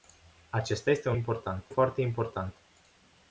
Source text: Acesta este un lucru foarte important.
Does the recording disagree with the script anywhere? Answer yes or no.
yes